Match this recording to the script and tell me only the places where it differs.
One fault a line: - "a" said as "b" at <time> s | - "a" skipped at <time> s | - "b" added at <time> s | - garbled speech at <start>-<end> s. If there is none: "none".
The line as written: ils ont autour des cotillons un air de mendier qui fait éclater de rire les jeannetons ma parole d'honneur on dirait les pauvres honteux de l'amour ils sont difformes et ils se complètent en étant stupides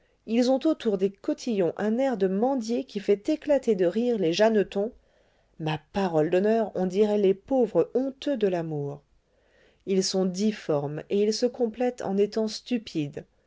none